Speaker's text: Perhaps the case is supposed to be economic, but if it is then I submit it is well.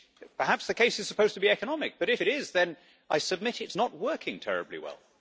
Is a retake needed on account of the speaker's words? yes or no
yes